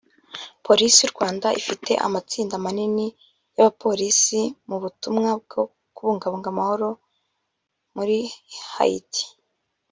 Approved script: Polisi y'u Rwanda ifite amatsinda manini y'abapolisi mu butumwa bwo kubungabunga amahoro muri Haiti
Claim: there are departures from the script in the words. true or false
false